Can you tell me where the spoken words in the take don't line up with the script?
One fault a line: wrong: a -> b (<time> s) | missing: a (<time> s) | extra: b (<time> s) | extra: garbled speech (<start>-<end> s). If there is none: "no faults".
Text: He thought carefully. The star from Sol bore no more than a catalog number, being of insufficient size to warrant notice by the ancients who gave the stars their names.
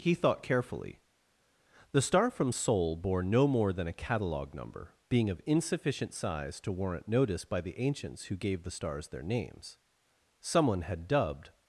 extra: Someone had dubbed (10.4 s)